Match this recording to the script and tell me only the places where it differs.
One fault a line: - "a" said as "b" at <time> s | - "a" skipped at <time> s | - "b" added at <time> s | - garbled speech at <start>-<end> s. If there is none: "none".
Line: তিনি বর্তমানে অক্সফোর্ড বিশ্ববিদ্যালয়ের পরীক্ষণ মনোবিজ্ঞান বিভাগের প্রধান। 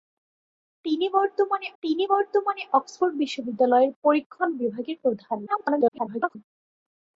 - "তিনি বর্তমানে" added at 1.8 s
- "মনোবিজ্ঞান" skipped at 4.5 s
- garbled speech at 5.5-6.4 s